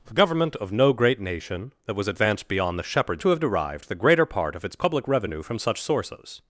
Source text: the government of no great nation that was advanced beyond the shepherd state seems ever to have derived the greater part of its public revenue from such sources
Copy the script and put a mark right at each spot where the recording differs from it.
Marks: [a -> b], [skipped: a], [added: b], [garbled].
the government of no great nation that was advanced beyond the shepherd [skipped: state seems ever] to have derived the greater part of its public revenue from such sources